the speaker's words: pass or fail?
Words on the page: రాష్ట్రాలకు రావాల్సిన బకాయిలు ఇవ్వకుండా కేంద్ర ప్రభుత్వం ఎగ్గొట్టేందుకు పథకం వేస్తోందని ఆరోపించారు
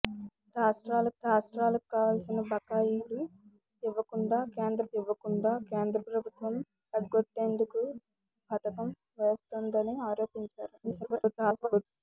fail